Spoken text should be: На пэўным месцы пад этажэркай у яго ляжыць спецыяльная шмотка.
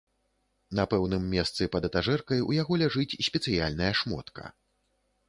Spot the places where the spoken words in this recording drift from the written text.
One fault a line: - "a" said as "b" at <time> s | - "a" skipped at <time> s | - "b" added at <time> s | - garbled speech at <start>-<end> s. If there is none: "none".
none